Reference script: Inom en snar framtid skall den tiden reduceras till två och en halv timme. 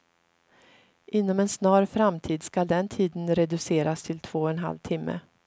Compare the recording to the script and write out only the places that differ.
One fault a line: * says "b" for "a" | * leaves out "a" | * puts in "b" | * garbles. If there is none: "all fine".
all fine